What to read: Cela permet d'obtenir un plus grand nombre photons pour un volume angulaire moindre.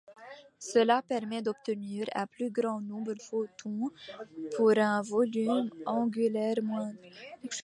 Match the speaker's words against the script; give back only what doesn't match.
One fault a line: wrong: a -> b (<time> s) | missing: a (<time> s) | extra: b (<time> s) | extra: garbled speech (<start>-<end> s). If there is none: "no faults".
no faults